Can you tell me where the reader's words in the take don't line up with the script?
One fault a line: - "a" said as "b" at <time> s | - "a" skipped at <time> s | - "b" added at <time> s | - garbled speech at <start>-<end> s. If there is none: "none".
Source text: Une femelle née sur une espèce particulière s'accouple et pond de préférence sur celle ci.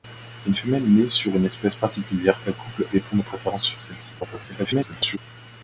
- garbled speech at 4.2-5.2 s